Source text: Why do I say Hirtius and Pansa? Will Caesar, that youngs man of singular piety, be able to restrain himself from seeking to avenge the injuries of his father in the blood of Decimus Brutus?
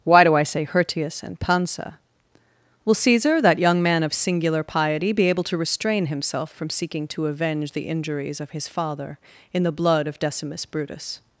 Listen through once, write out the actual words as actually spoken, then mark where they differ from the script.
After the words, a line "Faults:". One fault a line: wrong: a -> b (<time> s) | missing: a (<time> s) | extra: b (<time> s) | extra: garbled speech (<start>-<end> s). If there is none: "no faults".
Why do I say Hirtius and Pansa? Will Caesar, that young man of singular piety, be able to restrain himself from seeking to avenge the injuries of his father in the blood of Decimus Brutus?
Faults:
wrong: youngs -> young (3.6 s)